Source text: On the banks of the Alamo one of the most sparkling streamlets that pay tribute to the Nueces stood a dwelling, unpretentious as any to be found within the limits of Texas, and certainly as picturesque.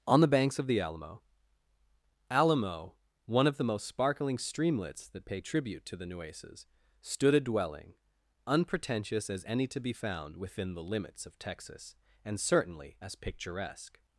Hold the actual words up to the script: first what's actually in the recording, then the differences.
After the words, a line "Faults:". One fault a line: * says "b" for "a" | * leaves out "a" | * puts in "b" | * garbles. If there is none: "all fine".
On the banks of the Alamo Alamo one of the most sparkling streamlets that pay tribute to the Nueces stood a dwelling, unpretentious as any to be found within the limits of Texas, and certainly as picturesque.
Faults:
* puts in "Alamo"